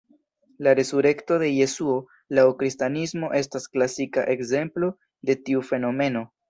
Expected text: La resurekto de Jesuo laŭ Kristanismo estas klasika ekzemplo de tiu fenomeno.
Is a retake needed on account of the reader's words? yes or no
no